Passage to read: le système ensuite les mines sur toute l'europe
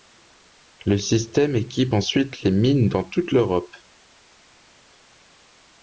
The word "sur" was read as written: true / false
false